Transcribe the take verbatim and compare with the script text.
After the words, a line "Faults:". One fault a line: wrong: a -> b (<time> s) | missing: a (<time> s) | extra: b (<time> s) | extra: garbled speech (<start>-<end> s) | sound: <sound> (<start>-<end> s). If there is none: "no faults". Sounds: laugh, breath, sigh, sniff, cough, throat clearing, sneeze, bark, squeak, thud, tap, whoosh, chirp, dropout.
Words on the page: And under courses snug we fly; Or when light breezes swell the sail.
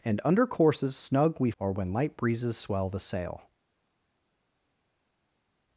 And under courses snug we; Or when light breezes swell the sail.
Faults:
missing: fly (1.5 s)